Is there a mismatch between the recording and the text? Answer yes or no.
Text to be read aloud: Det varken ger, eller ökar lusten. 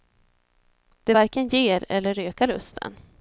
no